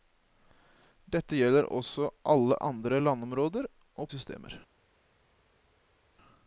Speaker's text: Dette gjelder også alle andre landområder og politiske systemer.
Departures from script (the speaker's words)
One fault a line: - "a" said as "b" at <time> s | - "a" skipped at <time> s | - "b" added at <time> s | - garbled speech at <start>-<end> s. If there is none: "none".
- "politiske" skipped at 4.1 s